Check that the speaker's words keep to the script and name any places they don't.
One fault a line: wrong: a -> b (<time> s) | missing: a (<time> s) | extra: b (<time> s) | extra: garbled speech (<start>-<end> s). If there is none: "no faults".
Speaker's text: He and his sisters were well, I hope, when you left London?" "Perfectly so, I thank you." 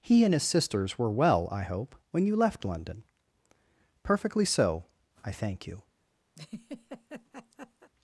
no faults